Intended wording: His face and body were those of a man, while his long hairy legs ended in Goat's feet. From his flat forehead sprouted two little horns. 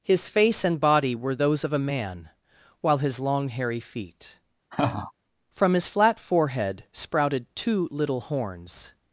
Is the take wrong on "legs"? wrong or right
wrong